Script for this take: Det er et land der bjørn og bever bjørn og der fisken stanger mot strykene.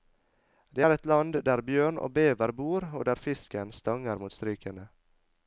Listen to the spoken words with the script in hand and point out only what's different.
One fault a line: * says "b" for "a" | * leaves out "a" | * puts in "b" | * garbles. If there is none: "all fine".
* says "bor" for "bjørn"